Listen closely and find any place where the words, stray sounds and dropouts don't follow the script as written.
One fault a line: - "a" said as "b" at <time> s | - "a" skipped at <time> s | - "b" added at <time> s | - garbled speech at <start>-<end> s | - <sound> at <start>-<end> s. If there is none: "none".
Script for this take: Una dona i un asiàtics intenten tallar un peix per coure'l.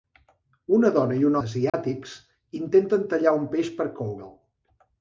- dropout at 1.7-1.7 s